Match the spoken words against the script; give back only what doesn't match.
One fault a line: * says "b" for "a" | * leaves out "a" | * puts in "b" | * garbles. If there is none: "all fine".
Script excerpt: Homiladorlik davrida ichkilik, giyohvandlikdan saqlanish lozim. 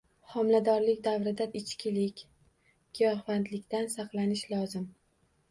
all fine